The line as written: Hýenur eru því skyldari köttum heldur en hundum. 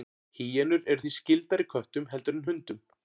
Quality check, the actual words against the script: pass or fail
pass